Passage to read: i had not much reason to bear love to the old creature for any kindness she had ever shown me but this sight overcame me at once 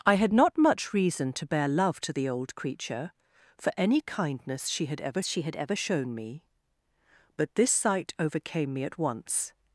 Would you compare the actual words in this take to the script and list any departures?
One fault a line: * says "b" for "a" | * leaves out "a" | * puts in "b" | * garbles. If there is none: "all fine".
* puts in "she had ever"